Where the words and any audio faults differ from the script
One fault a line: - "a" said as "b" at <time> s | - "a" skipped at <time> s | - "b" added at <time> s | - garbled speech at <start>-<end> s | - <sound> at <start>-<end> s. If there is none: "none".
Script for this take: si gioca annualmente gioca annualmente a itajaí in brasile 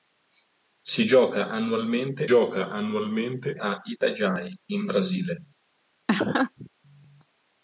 - laugh at 6.1-6.7 s